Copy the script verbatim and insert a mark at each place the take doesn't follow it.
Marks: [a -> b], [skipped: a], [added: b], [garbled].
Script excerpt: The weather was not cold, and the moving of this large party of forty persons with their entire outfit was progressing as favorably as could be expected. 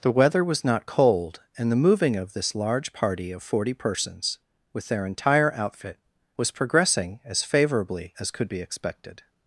The weather was not cold, and the moving of this large party of forty persons with their entire outfit was progressing as favorably as could be expected.